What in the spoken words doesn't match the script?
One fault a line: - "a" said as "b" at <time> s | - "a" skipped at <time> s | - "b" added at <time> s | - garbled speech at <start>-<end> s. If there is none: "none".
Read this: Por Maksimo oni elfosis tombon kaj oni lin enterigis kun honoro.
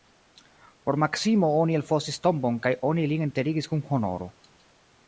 none